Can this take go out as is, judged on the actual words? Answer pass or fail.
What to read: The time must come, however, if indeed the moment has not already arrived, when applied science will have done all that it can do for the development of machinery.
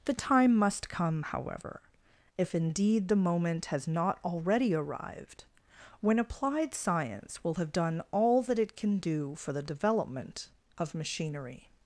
pass